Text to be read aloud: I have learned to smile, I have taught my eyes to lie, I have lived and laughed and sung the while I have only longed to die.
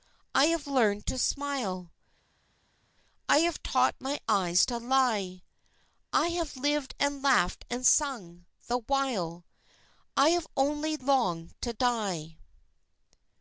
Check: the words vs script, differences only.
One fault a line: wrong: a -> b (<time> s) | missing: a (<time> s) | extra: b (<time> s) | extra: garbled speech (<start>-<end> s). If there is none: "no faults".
no faults